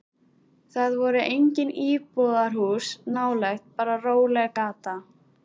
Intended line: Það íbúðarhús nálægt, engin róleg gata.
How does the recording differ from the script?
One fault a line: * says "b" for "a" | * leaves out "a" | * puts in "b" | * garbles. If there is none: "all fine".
* puts in "voru engin"
* says "bara" for "engin"